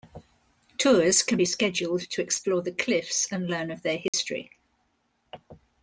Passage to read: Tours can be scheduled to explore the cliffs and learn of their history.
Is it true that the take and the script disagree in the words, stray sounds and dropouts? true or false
true